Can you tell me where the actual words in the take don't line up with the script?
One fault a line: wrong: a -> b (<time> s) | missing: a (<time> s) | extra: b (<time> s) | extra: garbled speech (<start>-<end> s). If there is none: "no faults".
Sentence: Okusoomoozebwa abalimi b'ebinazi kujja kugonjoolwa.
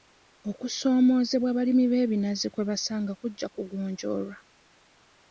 extra: kwe basanga (2.5 s)